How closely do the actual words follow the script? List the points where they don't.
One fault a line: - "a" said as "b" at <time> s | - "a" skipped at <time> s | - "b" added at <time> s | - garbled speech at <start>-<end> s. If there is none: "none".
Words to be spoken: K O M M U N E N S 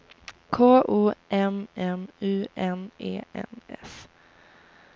none